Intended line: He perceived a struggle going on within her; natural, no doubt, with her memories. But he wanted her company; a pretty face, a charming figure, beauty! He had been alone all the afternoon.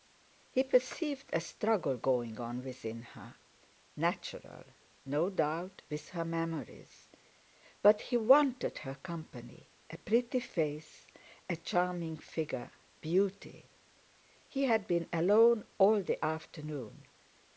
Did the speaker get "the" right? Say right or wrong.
right